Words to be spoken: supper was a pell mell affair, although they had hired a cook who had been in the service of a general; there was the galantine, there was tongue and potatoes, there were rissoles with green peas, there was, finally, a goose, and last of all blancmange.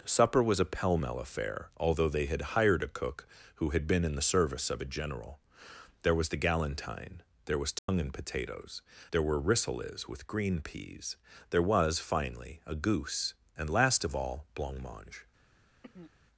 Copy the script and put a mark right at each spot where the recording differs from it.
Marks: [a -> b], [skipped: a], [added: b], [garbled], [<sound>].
supper was a pell mell affair, although they had hired a cook who had been in the service of a general; there was the galantine, there was tongue [dropout] and potatoes, there were rissoles with green peas, there was, finally, a goose, and last of all blancmange. [throat clearing]